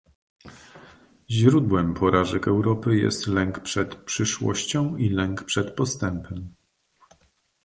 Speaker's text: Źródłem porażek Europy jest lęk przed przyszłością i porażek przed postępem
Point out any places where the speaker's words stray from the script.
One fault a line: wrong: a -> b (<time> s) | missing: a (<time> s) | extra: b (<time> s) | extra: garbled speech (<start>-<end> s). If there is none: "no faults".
wrong: porażek -> lęk (5.1 s)